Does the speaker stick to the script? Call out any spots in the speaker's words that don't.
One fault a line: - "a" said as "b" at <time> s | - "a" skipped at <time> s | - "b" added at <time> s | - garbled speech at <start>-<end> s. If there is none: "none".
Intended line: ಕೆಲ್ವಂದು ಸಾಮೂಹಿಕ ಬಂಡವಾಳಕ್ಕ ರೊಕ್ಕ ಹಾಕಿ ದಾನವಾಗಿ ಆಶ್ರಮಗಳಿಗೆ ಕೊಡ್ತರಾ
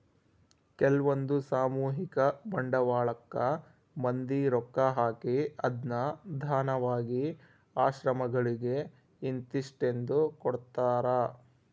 - "ಮಂದಿ" added at 4.0 s
- "ಅದ್ನ" added at 5.7 s
- "ಇಂತಿಸ್ಟೆಂದು" added at 9.2 s